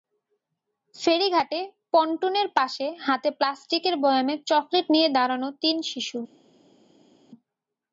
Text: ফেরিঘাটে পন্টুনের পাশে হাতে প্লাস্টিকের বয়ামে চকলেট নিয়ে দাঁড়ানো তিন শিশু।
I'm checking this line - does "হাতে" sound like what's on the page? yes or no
yes